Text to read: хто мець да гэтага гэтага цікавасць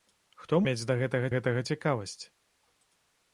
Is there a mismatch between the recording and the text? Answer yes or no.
no